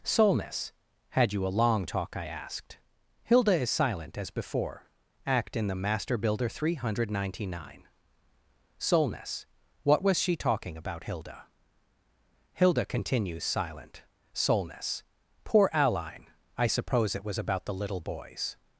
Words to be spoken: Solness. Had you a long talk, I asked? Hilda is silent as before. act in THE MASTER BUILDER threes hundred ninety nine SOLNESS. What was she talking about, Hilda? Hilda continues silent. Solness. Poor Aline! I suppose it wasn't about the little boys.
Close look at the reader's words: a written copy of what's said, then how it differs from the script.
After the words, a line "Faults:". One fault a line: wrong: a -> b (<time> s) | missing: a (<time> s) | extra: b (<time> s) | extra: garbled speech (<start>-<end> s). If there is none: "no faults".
Solness. Had you a long talk, I asked? Hilda is silent as before. act in THE MASTER BUILDER three hundred ninety nine SOLNESS. What was she talking about, Hilda? Hilda continues silent. Solness. Poor Aline! I suppose it was about the little boys.
Faults:
wrong: threes -> three (6.5 s)
wrong: wasn't -> was (17.2 s)